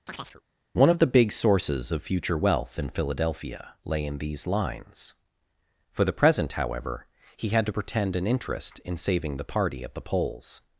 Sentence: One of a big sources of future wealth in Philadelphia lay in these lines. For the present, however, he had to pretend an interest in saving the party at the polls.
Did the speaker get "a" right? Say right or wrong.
wrong